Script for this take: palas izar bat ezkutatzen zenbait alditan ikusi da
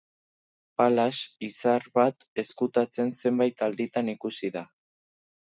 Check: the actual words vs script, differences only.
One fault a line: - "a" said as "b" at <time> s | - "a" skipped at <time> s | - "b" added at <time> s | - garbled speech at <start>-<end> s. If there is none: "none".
none